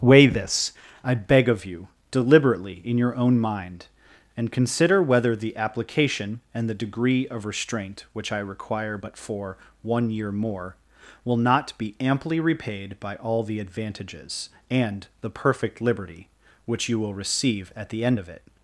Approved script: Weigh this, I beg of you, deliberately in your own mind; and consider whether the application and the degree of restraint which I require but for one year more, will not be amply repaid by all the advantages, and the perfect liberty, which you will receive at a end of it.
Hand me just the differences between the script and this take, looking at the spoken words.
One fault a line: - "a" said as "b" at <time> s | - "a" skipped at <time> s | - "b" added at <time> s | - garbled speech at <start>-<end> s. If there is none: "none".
- "a" said as "the" at 17.9 s